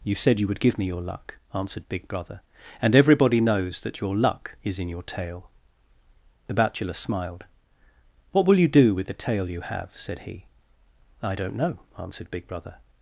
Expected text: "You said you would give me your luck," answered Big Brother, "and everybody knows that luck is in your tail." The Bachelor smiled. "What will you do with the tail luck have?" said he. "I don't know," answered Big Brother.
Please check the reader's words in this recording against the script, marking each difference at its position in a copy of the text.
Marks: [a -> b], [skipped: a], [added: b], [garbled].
"You said you would give me your luck," answered Big Brother, "and everybody knows that [added: your] luck is in your tail." The Bachelor smiled. "What will you do with the tail [luck -> you] have?" said he. "I don't know," answered Big Brother.